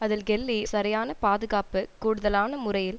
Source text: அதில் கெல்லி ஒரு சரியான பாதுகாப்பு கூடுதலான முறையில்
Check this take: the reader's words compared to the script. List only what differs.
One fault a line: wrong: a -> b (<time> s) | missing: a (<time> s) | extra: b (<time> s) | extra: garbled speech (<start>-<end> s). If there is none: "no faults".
missing: ஒரு (0.6 s)